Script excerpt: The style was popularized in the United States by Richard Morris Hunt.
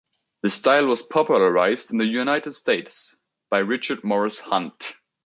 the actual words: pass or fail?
pass